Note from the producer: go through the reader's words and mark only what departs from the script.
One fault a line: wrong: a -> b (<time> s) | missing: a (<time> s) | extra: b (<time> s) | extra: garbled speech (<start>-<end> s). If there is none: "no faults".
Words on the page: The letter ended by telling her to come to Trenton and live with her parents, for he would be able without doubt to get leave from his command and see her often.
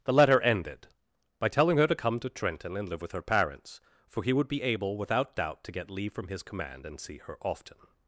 no faults